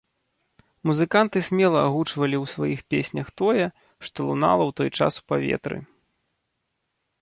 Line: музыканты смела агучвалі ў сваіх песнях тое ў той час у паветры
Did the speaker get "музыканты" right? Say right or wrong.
right